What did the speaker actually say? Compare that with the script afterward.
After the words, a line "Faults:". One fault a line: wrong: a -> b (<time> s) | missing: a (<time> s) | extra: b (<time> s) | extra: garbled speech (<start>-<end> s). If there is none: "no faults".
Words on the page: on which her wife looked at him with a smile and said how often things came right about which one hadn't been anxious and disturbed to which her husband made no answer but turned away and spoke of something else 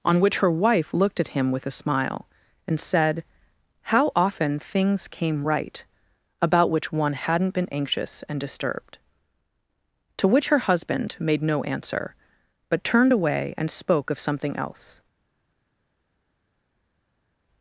on which her wife looked at him with a smile and said how often things came right about which one hadn't been anxious and disturbed to which her husband made no answer but turned away and spoke of something else
Faults:
no faults